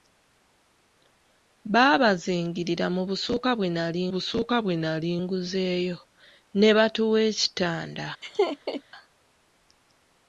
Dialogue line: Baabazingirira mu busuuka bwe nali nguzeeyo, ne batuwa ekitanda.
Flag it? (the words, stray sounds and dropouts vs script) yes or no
yes